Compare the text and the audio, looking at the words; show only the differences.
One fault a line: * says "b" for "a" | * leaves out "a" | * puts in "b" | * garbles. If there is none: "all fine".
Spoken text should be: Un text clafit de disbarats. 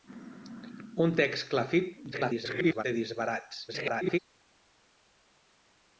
* garbles
* garbles